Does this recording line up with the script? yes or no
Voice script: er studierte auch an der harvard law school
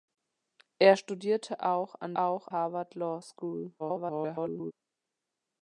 no